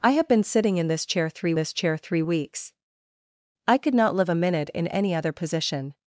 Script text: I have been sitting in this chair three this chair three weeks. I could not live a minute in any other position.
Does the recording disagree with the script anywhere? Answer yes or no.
no